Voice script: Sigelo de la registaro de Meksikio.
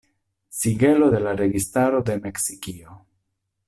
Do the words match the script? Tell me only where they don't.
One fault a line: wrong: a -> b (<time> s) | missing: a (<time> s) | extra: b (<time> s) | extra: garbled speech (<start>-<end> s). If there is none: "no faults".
no faults